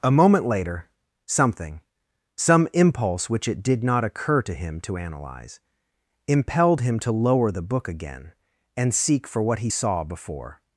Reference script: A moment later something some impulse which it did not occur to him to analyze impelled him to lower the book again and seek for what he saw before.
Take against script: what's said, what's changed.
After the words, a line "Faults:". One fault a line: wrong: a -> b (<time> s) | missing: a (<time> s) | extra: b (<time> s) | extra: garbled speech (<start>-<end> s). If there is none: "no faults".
A moment later something some impulse which it did not occur to him to analyze impelled him to lower the book again and seek for what he saw before.
Faults:
no faults